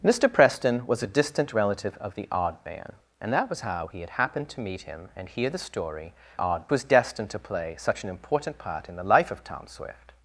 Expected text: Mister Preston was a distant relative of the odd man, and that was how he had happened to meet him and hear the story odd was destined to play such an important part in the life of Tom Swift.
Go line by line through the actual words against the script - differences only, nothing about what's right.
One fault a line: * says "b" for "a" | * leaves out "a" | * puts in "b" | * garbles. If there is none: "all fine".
all fine